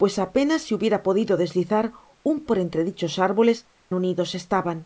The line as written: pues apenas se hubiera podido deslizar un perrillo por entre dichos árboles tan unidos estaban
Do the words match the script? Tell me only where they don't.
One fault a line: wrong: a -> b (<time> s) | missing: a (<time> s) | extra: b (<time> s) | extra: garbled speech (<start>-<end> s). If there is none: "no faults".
missing: perrillo (2.4 s)
missing: tan (3.7 s)